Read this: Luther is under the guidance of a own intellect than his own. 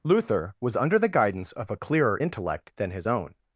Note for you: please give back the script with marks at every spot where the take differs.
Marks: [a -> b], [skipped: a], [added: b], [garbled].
Luther [is -> was] under the guidance of a [own -> clearer] intellect than his own.